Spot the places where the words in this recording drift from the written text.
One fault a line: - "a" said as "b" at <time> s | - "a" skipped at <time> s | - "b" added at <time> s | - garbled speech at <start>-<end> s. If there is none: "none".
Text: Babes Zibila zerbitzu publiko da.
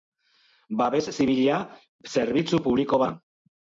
none